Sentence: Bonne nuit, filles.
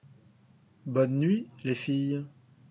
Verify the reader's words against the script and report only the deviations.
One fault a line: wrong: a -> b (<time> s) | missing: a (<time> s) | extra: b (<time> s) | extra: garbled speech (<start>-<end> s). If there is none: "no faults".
extra: les (1.6 s)